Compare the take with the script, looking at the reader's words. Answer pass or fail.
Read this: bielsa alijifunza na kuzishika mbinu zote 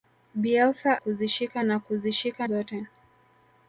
fail